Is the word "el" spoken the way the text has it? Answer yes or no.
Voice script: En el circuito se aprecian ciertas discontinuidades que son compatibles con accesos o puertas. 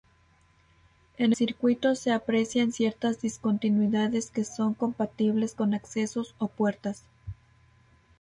no